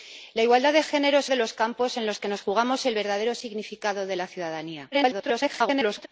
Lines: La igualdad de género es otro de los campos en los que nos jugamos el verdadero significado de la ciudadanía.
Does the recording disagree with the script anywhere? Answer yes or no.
yes